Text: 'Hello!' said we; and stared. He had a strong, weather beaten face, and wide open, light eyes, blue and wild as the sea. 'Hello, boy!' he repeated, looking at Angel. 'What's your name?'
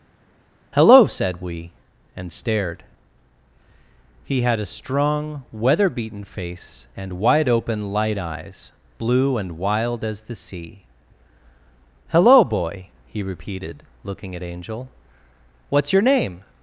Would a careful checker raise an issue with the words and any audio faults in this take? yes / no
no